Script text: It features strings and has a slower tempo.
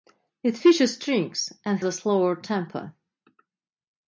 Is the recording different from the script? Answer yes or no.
yes